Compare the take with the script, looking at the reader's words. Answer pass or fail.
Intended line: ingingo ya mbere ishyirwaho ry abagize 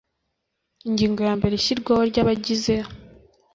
pass